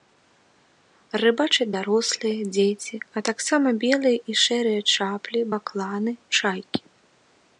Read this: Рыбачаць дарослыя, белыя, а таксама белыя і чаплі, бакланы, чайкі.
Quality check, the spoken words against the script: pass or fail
fail